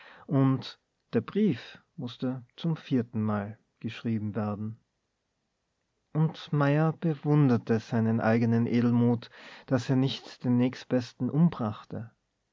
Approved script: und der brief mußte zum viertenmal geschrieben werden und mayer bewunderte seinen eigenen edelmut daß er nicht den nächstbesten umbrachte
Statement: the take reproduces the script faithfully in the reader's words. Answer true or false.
true